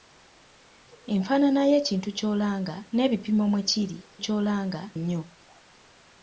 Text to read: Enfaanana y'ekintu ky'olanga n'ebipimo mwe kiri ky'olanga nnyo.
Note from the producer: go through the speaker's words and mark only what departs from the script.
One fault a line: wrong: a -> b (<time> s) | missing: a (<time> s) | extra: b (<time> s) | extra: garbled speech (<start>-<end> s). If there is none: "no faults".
no faults